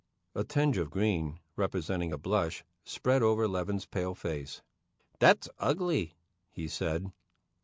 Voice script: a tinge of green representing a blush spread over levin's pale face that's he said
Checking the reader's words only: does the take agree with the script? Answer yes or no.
no